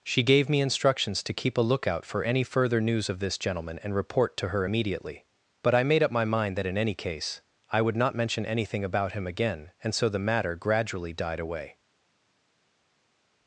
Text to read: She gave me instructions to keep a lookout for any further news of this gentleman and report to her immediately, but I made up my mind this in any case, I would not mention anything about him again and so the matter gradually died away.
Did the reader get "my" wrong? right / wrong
right